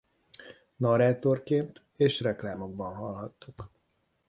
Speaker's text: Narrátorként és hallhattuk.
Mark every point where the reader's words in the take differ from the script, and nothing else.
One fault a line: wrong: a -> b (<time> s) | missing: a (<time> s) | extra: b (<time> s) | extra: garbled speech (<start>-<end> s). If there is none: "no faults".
extra: reklámokban (2.2 s)